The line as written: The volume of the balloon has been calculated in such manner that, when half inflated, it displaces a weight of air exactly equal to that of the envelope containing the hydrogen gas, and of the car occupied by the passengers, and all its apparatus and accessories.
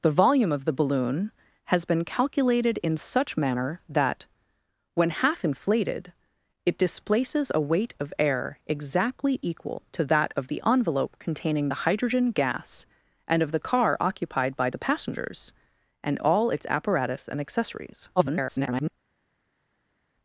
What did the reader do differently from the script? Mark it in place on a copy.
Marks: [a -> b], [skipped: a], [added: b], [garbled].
The volume of the balloon has been calculated in such manner that, when half inflated, it displaces a weight of air exactly equal to that of the envelope containing the hydrogen gas, and of the car occupied by the passengers, and all its apparatus and accessories. [garbled]